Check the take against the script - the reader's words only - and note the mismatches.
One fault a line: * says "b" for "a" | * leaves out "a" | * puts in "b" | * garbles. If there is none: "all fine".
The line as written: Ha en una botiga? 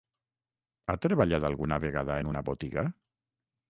* puts in "treballat alguna vegada"